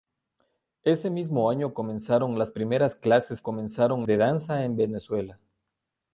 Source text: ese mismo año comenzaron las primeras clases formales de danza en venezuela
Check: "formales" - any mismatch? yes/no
yes